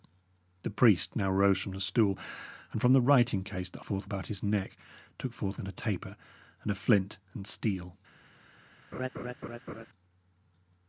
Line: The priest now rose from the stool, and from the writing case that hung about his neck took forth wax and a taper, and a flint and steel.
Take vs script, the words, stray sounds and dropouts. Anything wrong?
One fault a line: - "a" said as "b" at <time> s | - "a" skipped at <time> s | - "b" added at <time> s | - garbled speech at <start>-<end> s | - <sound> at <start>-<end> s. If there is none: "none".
- "hung" said as "forth" at 3.8 s
- "wax" skipped at 5.6 s
- laugh at 8.9-9.9 s